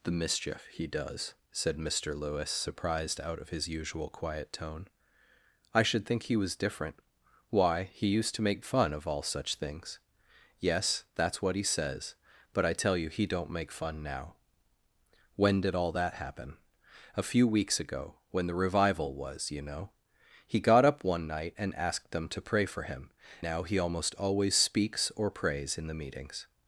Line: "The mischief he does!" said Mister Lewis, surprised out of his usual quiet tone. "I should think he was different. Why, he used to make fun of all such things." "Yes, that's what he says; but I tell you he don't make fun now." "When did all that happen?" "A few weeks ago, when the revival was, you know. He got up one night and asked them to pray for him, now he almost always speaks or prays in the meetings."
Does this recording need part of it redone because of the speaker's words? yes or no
no